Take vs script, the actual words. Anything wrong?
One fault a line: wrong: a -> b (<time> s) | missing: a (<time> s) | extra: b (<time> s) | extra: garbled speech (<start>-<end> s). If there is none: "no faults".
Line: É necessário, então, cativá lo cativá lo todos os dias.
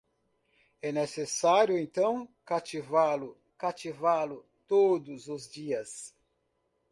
no faults